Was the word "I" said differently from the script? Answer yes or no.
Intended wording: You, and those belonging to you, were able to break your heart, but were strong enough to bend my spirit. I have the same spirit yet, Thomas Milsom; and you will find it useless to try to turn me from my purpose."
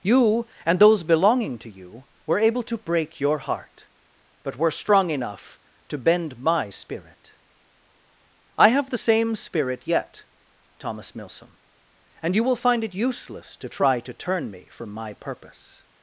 no